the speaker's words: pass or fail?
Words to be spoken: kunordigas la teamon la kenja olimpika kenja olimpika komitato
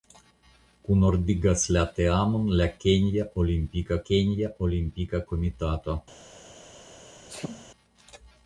pass